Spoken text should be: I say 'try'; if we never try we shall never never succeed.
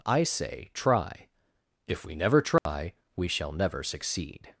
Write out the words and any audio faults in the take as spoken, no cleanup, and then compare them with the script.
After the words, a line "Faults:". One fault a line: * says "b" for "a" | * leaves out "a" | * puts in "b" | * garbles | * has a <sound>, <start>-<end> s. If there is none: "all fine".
I say 'try'; if we never try we shall never succeed.
Faults:
* has a dropout, 2.6-2.7 s
* leaves out "never"